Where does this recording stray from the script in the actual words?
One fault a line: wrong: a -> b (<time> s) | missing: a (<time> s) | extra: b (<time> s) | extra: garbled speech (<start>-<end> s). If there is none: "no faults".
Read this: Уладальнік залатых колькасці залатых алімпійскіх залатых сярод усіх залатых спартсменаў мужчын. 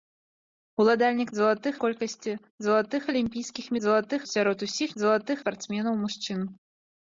no faults